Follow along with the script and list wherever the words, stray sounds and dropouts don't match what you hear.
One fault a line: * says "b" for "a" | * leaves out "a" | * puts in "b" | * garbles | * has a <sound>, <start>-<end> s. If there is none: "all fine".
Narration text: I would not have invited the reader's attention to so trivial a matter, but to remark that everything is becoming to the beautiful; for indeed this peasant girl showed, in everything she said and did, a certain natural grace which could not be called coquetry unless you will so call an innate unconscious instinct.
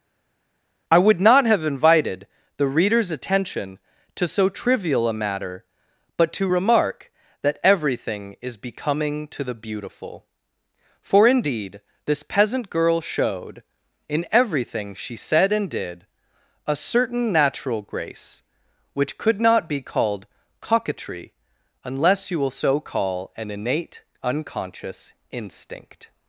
all fine